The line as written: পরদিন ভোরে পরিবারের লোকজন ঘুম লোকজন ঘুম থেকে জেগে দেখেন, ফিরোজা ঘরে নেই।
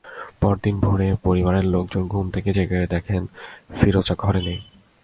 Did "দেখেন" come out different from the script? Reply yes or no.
no